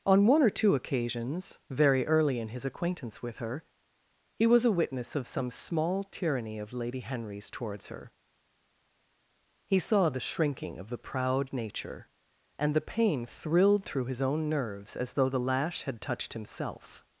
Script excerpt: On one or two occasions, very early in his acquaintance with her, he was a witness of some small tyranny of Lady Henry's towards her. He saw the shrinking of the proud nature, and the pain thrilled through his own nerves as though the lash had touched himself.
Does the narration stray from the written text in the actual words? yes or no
no